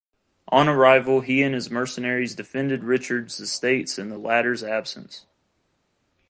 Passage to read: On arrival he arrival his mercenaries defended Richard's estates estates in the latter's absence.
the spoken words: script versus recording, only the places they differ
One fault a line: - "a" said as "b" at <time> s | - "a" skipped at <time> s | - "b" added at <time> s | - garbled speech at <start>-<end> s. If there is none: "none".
- "arrival" said as "and" at 1.4 s
- "estates" skipped at 4.0 s